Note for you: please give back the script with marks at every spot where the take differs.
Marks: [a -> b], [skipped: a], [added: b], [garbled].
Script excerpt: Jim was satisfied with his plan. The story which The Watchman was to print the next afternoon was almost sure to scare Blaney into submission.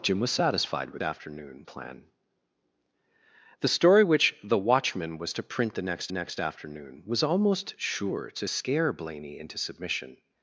Jim was satisfied with [his -> afternoon] plan. The story which The Watchman was to print the next [added: next] afternoon was almost sure to scare Blaney into submission.